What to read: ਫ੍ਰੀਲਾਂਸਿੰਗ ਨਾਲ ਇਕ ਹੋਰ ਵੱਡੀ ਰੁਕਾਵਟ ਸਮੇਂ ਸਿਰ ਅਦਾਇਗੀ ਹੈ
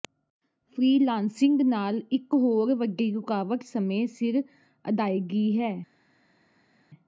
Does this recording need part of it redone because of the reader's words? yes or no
no